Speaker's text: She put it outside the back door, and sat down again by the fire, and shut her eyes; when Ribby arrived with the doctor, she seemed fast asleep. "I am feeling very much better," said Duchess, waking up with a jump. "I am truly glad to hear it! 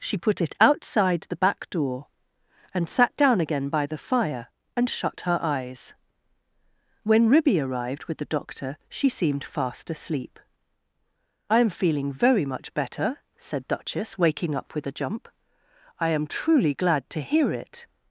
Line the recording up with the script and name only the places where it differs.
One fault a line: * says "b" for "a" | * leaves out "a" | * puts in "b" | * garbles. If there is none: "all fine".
all fine